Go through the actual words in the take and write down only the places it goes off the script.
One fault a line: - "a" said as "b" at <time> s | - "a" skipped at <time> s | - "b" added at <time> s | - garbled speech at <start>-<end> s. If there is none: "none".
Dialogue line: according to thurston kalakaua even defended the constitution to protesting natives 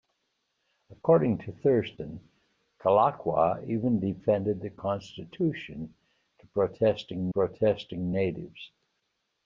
- "protesting" added at 7.3 s